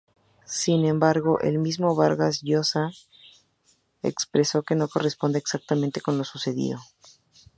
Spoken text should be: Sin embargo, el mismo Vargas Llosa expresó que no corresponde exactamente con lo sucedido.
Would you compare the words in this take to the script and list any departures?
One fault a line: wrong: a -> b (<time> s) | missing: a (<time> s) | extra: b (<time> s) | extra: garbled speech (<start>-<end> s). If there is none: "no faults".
no faults